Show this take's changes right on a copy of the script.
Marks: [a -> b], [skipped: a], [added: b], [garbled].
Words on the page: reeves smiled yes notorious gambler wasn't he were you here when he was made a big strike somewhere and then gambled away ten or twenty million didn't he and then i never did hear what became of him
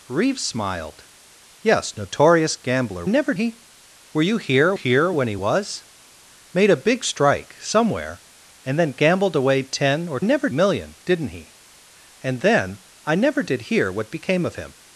reeves smiled yes notorious gambler [wasn't -> never] he were you here [added: here] when he was made a big strike somewhere and then gambled away ten or [twenty -> never] million didn't he and then i never did hear what became of him